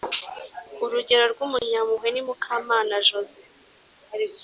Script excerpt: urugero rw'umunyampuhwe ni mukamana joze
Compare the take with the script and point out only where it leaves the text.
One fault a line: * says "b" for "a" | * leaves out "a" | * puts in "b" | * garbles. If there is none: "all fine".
all fine